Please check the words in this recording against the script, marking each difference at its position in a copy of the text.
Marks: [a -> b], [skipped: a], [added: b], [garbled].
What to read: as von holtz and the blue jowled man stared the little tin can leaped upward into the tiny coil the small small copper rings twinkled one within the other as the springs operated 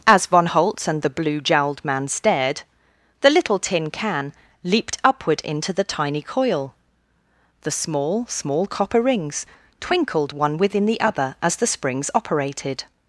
as von holtz and the blue jowled man stared the little tin can leaped upward into the tiny coil the small small copper rings twinkled one within the other as the springs operated